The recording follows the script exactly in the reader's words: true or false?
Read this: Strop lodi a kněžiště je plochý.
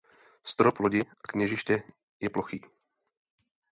true